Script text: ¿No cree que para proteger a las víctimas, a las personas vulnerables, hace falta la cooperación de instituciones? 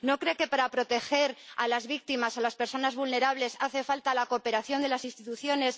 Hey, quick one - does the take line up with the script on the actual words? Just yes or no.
no